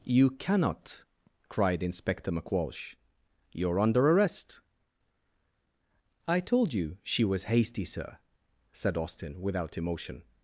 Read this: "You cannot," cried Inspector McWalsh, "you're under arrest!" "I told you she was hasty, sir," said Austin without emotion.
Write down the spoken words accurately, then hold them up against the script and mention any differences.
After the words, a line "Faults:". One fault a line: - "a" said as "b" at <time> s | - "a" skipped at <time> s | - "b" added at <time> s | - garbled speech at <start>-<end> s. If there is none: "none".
"You cannot," cried Inspector McWalsh, "you're under arrest!" "I told you she was hasty, sir," said Austin without emotion.
Faults:
none